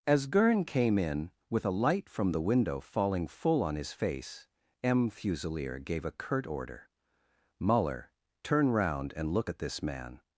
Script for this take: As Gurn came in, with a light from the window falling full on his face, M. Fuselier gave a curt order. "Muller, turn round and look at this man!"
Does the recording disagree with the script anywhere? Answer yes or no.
no